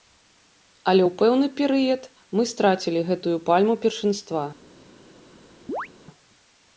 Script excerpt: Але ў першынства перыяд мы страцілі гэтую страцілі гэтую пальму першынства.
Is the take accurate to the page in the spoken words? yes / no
no